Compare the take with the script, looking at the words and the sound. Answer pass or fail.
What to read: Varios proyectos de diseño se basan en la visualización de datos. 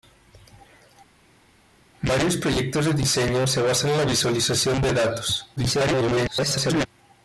fail